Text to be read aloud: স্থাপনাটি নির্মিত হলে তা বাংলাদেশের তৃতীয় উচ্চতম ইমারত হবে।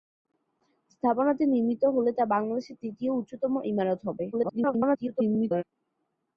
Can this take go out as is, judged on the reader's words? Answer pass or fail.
fail